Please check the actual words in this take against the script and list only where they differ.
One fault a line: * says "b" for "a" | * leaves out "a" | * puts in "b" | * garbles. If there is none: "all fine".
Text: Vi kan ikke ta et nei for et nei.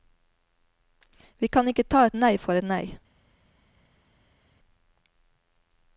all fine